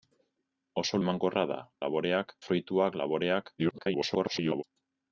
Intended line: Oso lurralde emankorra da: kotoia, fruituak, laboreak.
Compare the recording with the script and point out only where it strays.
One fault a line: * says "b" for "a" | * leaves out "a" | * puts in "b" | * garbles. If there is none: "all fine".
* leaves out "lurralde"
* says "laboreak" for "kotoia"
* garbles